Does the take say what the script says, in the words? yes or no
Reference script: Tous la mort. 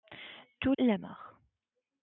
yes